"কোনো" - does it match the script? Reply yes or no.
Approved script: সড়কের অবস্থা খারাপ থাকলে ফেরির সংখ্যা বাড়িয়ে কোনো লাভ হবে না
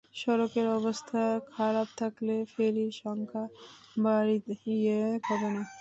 no